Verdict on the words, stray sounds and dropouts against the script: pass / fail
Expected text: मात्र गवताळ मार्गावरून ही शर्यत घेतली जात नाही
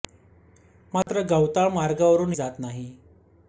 fail